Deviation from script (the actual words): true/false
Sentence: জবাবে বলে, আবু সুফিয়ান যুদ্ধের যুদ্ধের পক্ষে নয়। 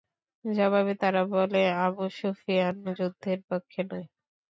true